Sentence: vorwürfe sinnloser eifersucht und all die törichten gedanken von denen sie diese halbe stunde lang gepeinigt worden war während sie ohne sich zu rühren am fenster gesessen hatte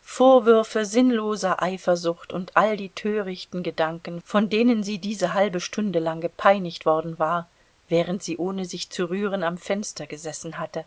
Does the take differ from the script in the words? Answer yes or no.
no